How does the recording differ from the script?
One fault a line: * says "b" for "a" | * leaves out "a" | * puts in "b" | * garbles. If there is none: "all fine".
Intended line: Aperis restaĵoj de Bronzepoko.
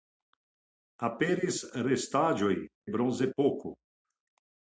* leaves out "de"